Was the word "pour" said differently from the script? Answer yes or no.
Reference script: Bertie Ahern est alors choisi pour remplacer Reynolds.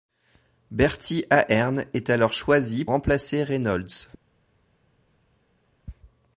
yes